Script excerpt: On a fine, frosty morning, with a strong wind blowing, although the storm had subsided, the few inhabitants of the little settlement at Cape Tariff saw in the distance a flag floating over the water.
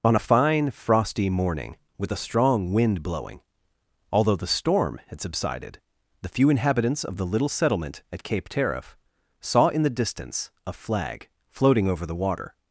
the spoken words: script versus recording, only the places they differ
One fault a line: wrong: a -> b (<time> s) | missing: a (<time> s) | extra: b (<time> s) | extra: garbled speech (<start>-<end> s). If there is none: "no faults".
no faults